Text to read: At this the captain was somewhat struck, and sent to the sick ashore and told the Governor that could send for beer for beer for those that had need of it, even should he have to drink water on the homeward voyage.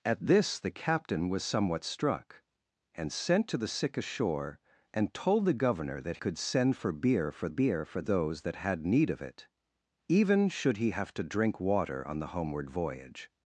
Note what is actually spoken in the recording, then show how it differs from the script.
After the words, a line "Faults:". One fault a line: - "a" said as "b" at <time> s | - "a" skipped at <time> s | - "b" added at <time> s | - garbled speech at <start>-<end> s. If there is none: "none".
At this the captain was somewhat struck, and sent to the sick ashore and told the Governor that could send for beer for beer for those that had need of it, even should he have to drink water on the homeward voyage.
Faults:
none